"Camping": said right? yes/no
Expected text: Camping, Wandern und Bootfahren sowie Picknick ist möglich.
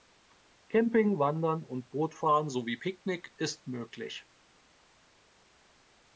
yes